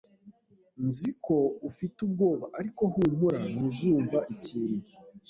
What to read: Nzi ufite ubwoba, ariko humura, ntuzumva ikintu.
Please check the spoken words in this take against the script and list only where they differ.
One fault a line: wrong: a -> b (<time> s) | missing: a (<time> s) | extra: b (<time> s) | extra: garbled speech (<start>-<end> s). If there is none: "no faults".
extra: ko (1.2 s)